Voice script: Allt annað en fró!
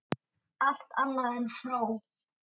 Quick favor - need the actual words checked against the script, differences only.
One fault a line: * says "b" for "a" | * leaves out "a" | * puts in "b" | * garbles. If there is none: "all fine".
all fine